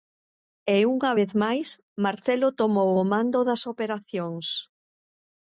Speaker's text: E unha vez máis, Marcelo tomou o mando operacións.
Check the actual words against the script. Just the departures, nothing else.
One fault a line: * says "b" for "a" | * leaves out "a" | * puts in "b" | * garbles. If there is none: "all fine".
* puts in "das"